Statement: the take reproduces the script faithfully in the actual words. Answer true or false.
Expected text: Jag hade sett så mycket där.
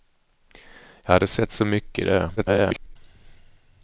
false